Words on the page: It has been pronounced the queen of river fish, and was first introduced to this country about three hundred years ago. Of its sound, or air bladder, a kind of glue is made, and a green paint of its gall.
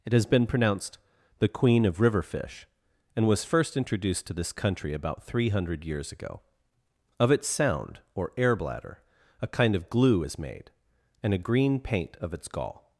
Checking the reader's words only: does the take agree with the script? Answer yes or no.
yes